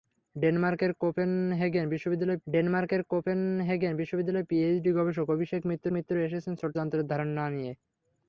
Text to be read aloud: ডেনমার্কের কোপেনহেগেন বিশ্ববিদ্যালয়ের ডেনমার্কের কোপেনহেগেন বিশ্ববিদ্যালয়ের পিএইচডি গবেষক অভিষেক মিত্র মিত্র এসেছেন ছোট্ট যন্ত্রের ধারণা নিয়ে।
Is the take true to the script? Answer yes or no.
yes